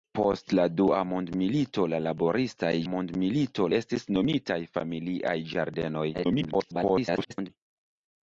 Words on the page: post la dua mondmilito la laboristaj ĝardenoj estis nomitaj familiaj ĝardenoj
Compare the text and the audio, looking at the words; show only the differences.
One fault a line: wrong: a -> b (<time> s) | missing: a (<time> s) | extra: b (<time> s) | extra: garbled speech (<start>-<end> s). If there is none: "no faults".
wrong: ĝardenoj -> mondmilito (2.9 s)
extra: garbled speech (6.1-7.5 s)